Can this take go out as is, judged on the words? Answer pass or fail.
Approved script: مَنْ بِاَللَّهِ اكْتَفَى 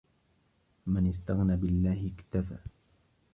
fail